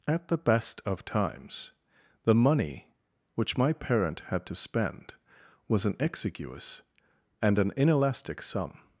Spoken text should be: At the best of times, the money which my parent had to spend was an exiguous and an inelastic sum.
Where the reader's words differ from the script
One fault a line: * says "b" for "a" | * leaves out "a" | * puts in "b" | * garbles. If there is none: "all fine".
all fine